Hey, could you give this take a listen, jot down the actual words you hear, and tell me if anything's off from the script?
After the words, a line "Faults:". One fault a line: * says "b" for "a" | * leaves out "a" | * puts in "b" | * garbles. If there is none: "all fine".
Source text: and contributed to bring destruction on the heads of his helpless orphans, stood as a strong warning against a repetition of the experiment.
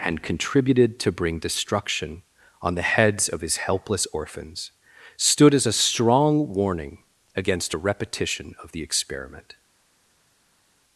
and contributed to bring destruction on the heads of his helpless orphans, stood as a strong warning against a repetition of the experiment.
Faults:
all fine